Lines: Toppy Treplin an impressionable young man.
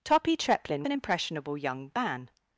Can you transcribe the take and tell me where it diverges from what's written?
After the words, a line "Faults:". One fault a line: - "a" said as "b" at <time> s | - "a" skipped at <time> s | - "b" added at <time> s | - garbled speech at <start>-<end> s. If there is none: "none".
Toppy Treplin an impressionable young man.
Faults:
none